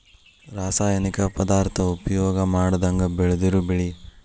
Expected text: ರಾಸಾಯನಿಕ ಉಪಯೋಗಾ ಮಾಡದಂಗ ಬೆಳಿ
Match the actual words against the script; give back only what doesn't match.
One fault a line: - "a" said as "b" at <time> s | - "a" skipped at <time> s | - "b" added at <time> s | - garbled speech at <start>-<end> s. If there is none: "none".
- "ಪದಾರ್ಥಾ" added at 1.4 s
- "ಬೆಳದಿರು" added at 3.2 s